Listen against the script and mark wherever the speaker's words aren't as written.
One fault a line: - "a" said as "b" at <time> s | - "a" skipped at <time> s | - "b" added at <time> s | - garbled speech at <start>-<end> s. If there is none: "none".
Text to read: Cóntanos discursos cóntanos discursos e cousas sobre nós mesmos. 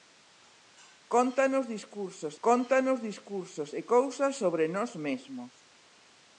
none